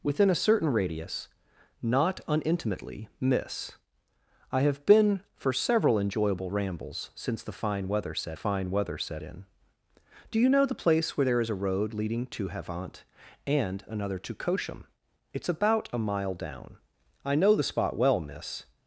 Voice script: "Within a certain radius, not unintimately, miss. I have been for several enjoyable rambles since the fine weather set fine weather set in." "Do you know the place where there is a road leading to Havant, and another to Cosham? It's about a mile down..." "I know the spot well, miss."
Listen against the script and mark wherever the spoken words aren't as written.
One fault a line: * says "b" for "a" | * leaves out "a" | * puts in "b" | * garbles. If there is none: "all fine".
all fine